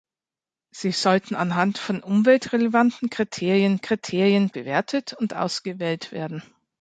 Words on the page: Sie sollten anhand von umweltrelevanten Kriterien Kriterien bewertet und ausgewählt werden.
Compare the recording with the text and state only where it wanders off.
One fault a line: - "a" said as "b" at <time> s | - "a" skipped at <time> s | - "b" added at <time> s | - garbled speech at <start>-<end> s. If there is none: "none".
none